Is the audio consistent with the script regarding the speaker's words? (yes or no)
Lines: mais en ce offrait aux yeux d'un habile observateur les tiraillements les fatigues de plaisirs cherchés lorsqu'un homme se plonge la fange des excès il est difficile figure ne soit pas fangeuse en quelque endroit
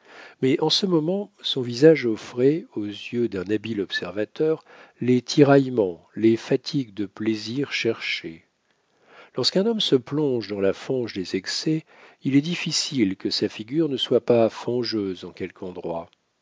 no